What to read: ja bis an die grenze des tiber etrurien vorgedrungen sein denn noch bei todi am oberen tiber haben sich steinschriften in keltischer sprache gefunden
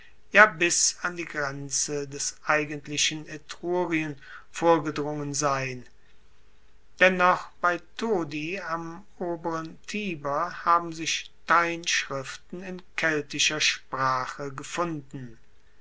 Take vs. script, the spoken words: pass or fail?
fail